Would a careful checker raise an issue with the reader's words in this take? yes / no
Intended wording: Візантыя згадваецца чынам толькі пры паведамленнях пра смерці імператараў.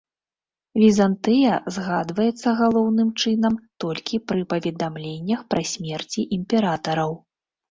yes